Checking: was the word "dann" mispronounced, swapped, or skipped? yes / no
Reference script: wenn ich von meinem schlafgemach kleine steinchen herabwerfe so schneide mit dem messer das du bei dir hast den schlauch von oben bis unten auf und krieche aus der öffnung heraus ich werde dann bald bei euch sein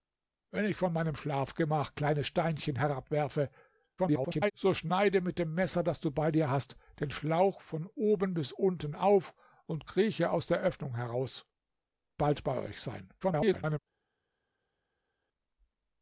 yes